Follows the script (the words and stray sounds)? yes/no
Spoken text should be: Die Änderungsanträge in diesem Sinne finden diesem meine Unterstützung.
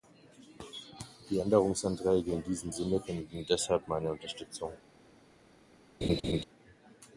no